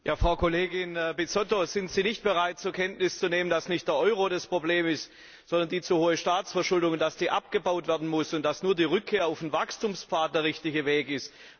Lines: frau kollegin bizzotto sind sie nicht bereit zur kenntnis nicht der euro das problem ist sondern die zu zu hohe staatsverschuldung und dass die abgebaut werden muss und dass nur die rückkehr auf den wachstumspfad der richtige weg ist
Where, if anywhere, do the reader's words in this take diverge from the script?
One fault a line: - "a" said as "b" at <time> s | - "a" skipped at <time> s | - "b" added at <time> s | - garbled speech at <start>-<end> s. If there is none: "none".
- "zu nehmen dass" added at 3.2 s
- "zu" skipped at 6.0 s